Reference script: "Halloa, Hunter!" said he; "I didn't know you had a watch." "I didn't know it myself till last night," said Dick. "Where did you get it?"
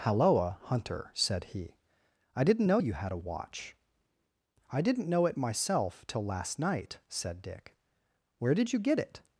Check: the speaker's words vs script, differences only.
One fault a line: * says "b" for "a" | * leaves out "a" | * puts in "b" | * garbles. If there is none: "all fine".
all fine